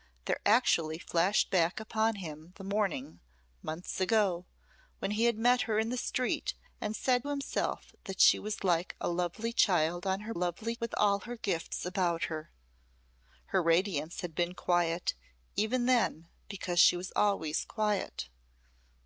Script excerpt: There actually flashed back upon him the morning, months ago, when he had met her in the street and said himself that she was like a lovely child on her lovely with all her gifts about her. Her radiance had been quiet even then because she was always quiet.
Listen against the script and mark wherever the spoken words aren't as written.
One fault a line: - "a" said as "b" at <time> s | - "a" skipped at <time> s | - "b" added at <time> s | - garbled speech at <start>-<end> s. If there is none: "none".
none